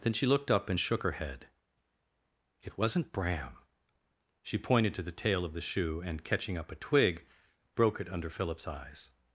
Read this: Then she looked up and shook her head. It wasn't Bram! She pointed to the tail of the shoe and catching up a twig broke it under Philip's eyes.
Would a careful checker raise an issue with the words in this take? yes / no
no